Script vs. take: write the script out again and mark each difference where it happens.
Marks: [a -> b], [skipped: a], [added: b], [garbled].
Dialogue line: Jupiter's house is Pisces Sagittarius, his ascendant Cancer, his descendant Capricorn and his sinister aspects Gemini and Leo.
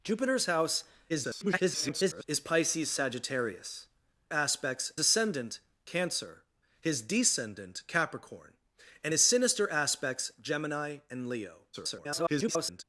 Jupiter's house [garbled] is Pisces Sagittarius, [his -> aspects] ascendant Cancer, his descendant Capricorn and his sinister aspects Gemini and Leo. [garbled]